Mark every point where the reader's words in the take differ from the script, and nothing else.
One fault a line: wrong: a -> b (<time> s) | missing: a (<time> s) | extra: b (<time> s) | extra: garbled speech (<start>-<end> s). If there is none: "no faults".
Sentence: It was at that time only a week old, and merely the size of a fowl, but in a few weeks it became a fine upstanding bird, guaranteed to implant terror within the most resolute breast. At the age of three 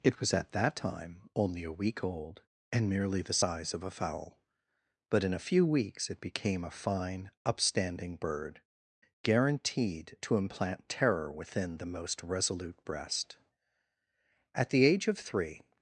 no faults